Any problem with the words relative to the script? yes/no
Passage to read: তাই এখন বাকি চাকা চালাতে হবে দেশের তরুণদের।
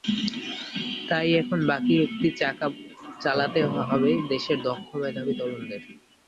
yes